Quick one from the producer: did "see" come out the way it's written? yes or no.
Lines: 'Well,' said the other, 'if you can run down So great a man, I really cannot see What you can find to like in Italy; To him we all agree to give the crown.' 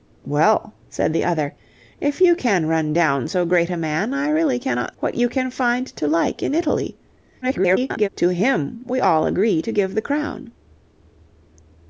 no